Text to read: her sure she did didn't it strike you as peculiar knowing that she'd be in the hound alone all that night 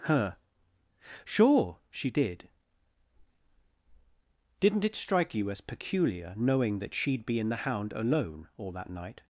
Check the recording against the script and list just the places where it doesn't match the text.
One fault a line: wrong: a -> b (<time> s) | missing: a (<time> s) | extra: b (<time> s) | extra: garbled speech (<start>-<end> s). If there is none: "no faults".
no faults